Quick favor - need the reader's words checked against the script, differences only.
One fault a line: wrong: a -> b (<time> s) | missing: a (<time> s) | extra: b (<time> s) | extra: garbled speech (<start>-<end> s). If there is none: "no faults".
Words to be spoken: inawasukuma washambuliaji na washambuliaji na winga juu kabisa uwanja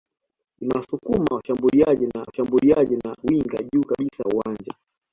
no faults